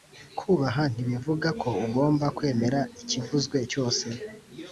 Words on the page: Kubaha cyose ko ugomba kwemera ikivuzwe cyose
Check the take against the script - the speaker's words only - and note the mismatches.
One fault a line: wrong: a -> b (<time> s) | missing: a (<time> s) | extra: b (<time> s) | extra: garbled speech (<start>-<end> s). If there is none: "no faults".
wrong: cyose -> ntibivuga (0.9 s)